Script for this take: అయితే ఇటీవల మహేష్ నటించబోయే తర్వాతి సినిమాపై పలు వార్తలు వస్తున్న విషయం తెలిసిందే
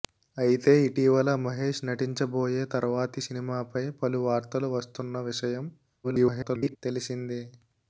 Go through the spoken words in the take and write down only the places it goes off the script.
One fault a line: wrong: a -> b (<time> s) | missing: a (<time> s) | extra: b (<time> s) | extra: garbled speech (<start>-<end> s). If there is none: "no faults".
extra: garbled speech (6.0-6.8 s)